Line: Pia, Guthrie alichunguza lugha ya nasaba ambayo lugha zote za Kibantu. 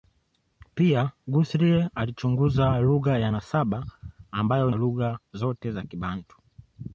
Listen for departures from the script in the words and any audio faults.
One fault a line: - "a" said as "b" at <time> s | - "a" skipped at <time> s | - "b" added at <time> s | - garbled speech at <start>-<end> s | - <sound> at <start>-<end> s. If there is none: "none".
none